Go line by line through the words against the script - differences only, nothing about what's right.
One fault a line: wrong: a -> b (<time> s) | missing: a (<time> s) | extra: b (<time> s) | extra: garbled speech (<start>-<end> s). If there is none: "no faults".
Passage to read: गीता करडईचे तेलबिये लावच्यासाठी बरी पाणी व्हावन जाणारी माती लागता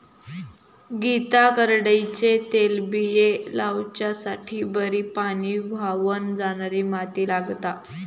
no faults